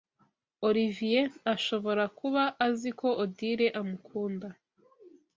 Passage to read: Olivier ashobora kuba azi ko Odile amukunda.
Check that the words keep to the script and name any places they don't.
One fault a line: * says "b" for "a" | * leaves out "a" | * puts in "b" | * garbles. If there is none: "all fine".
all fine